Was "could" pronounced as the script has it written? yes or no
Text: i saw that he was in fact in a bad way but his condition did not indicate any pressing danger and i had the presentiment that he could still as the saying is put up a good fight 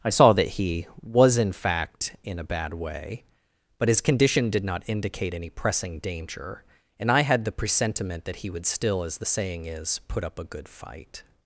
no